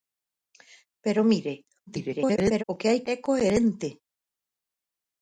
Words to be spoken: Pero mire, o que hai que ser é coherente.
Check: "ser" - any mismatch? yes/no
yes